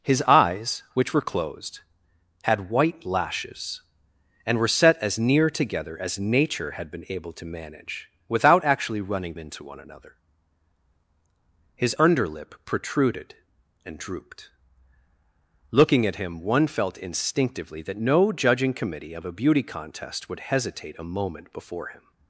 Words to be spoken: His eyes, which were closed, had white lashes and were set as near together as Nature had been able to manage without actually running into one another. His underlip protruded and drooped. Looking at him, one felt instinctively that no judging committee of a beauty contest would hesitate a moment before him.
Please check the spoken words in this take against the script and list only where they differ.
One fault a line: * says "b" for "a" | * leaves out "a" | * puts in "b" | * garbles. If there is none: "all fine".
all fine